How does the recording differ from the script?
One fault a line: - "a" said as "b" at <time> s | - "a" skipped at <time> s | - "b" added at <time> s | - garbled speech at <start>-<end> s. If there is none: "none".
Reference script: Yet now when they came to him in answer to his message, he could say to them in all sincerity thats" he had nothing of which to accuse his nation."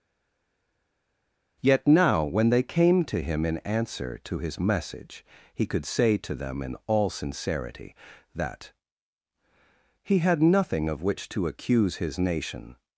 - "thats" said as "that" at 8.3 s